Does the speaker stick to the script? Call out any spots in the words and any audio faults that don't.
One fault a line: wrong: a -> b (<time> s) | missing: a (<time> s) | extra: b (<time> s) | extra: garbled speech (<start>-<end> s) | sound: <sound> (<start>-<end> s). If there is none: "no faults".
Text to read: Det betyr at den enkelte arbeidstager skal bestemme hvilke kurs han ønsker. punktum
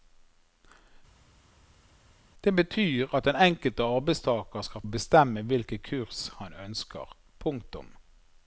no faults